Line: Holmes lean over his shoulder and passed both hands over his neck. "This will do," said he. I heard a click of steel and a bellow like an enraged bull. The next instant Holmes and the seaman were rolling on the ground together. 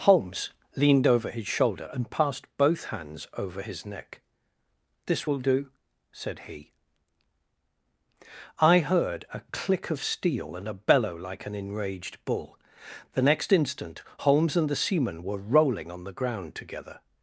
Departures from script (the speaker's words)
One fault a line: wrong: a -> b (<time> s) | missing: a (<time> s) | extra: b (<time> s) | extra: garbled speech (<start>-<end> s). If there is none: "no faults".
wrong: lean -> leaned (0.8 s)